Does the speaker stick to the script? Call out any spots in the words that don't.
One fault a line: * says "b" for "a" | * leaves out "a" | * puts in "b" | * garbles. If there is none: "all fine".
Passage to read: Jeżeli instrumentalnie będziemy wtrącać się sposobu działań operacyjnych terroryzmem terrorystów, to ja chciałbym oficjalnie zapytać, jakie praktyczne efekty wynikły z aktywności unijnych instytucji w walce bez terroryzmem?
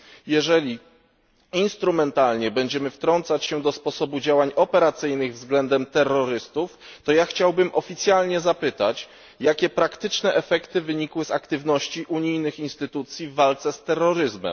* puts in "do"
* says "względem" for "terroryzmem"
* says "z" for "bez"